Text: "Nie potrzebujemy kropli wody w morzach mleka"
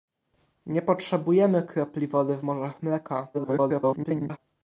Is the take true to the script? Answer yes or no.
no